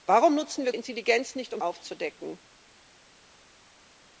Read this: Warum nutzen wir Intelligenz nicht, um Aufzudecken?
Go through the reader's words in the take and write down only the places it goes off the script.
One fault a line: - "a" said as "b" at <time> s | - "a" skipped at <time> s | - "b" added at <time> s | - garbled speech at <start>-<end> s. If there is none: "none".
none